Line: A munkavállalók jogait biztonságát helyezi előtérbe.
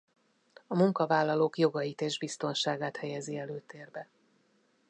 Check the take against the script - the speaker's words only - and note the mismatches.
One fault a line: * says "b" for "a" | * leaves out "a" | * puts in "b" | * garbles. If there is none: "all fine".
* puts in "és"